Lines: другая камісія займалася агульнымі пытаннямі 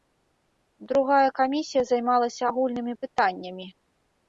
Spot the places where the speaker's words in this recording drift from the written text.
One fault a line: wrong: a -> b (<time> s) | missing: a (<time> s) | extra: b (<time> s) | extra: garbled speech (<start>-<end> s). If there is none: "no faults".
no faults